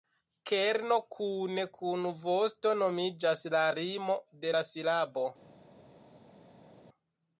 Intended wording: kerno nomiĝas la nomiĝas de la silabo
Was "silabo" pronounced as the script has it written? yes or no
yes